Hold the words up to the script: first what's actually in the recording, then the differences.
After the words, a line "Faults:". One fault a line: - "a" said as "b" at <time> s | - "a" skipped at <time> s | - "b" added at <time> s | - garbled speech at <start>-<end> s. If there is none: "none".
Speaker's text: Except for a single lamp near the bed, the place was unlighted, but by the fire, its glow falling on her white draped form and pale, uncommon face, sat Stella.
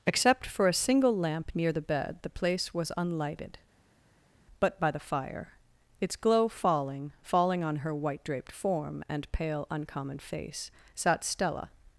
Except for a single lamp near the bed, the place was unlighted, but by the fire, its glow falling falling on her white draped form and pale, uncommon face, sat Stella.
Faults:
- "falling" added at 7.2 s